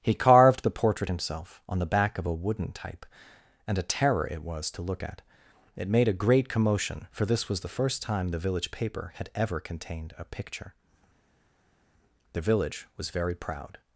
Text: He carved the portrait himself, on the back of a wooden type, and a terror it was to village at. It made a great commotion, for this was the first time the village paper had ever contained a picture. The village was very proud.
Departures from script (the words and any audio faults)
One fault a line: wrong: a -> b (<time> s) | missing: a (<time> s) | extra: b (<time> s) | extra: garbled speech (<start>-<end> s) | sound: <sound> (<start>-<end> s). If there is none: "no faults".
wrong: village -> look (4.8 s)